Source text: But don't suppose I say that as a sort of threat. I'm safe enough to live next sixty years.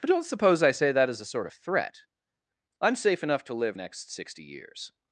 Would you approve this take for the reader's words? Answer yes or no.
yes